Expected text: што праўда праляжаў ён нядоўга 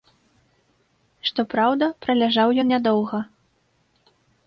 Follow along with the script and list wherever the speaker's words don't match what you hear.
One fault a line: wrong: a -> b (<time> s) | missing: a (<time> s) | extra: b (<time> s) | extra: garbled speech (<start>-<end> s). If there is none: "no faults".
no faults